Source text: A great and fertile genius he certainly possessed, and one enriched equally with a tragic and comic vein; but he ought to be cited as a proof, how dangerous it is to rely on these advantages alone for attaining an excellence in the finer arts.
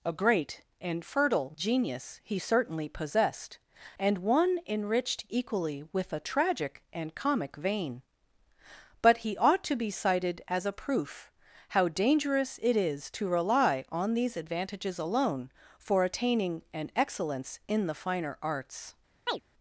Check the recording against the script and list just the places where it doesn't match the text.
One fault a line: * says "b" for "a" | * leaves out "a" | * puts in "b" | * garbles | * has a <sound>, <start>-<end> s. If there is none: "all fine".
* has a chirp, 19.3-19.4 s